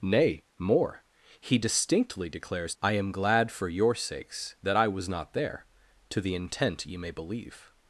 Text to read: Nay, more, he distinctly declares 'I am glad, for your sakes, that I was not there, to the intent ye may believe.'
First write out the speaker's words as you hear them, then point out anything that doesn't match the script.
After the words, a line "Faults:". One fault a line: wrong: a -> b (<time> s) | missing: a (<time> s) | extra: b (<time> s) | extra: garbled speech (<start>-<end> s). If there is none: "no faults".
Nay, more, he distinctly declares 'I am glad, for your sakes, that I was not there, to the intent ye may believe.'
Faults:
no faults